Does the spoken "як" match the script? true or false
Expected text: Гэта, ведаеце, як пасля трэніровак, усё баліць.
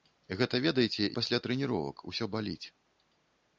false